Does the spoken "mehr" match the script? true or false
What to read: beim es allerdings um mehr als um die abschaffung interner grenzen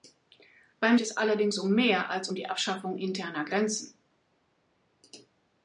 true